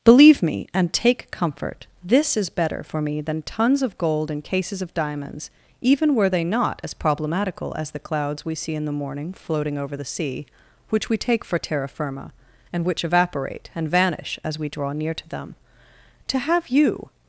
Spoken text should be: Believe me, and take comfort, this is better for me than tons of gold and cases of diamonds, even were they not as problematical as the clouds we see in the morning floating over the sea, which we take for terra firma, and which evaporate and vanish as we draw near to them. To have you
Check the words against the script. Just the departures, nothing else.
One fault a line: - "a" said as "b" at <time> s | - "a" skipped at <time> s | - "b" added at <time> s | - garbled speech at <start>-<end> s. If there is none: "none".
none